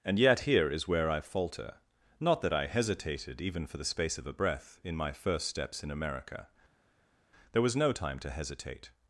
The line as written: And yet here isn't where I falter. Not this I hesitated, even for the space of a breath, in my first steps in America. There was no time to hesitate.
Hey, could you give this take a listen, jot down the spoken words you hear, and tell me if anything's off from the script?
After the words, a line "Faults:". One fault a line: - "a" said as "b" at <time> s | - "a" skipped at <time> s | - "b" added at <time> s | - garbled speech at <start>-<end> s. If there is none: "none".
And yet here is where I falter. Not that I hesitated, even for the space of a breath, in my first steps in America. There was no time to hesitate.
Faults:
- "isn't" said as "is" at 0.7 s
- "this" said as "that" at 2.4 s